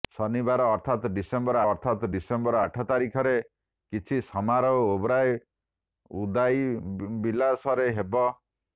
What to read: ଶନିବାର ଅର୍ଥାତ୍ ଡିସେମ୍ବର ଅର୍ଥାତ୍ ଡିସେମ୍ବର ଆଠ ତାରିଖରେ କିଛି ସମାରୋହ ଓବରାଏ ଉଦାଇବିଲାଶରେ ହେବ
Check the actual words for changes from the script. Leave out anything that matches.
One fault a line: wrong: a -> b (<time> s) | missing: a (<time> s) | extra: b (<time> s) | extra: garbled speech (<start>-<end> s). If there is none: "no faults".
no faults